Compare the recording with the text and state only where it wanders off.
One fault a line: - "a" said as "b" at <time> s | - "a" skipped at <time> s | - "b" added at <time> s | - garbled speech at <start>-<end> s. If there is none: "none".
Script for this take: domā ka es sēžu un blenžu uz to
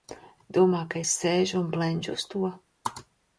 none